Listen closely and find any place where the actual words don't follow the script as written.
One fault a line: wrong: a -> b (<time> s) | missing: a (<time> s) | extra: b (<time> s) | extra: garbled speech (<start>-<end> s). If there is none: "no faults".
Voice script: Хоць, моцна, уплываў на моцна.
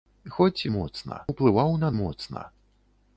no faults